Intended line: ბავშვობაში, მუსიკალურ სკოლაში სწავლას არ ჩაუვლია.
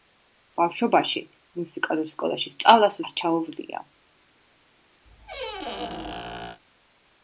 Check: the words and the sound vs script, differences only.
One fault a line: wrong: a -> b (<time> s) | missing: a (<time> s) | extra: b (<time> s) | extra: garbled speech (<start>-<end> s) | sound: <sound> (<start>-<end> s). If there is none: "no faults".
sound: squeak (5.0-6.6 s)